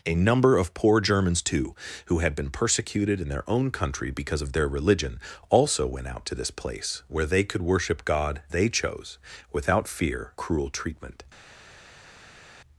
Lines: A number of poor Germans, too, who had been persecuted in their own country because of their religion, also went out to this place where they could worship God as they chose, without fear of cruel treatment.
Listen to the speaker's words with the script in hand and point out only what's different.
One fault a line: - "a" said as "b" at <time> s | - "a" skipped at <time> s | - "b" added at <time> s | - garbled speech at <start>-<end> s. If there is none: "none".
- "as" skipped at 8.4 s
- "of" skipped at 10.3 s